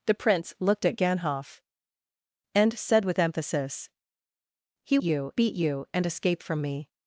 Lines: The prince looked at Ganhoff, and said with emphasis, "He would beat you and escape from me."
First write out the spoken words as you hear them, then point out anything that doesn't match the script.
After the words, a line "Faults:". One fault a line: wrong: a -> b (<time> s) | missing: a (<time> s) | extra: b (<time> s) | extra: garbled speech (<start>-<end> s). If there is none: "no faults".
The prince looked at Ganhoff, and said with emphasis, "He you beat you and escape from me."
Faults:
wrong: would -> you (5.0 s)